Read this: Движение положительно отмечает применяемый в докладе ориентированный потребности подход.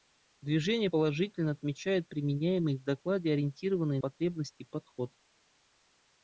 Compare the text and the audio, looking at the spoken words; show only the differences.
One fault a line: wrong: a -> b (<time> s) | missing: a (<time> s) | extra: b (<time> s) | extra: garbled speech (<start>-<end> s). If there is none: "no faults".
no faults